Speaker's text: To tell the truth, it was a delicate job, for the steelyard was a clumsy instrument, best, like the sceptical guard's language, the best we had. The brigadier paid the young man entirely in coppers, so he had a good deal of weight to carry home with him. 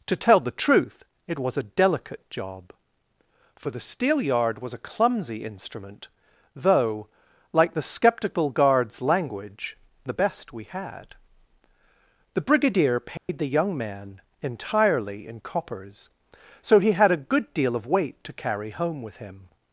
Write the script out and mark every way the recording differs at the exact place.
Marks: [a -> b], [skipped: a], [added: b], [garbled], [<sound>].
To tell the truth, it was a delicate job, for the steelyard was a clumsy instrument, [best, -> though] like the sceptical guard's language, the best we had. The brigadier paid [dropout] the young man entirely in coppers, so he had a good deal of weight to carry home with him.